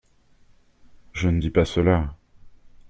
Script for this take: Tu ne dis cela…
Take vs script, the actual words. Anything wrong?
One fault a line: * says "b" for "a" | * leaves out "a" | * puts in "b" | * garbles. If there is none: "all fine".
* says "Je" for "Tu"
* puts in "pas"